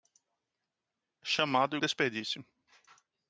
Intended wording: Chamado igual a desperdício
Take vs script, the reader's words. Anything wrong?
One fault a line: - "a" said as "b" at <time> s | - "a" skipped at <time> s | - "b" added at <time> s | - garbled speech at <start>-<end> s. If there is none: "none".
- "igual" skipped at 1.8 s